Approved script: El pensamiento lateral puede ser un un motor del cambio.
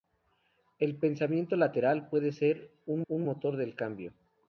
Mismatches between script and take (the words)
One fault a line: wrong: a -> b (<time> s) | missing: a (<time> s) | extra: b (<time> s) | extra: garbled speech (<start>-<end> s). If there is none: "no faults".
no faults